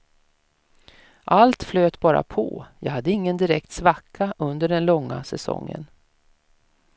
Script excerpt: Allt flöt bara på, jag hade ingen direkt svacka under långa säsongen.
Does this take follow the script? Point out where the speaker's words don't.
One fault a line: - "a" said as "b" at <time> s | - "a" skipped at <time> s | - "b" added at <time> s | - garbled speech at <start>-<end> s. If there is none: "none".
- "den" added at 4.7 s